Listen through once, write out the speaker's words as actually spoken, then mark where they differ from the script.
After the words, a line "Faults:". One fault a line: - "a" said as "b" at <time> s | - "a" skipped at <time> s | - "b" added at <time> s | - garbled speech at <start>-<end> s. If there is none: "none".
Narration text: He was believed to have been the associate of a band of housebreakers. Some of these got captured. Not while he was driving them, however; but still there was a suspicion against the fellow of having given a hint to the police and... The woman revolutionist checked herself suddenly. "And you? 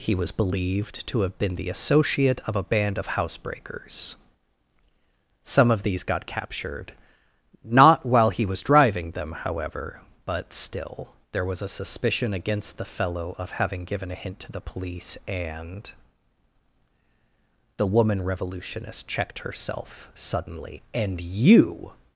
He was believed to have been the associate of a band of housebreakers. Some of these got captured. Not while he was driving them, however; but still there was a suspicion against the fellow of having given a hint to the police and... The woman revolutionist checked herself suddenly. "And you?
Faults:
none